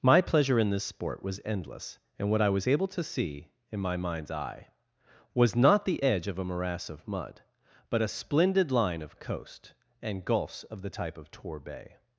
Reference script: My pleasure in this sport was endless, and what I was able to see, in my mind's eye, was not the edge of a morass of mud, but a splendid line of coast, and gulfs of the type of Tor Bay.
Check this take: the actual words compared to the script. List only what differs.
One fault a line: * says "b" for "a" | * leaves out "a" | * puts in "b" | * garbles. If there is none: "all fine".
all fine